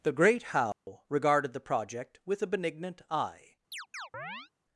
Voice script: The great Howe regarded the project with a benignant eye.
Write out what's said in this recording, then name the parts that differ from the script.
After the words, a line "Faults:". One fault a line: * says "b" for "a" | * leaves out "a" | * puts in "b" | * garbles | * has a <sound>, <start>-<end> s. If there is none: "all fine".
The great Howe regarded the project with a benignant eye.
Faults:
* has a dropout, 0.7-0.9 s
* has a chirp, 3.7-4.5 s